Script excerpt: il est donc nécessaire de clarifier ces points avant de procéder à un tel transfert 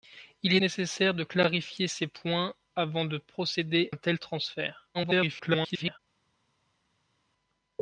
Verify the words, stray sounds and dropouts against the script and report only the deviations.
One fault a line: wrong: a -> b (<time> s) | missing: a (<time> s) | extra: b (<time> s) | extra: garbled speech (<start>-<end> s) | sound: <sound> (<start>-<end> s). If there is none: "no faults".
missing: donc (0.6 s)
missing: à (3.9 s)
extra: garbled speech (4.9-6.0 s)